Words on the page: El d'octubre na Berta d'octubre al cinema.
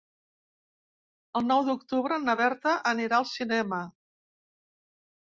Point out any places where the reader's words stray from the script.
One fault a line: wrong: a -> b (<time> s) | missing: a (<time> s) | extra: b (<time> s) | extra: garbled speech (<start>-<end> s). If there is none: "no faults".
extra: nou (1.5 s)
wrong: d'octubre -> anirà (2.9 s)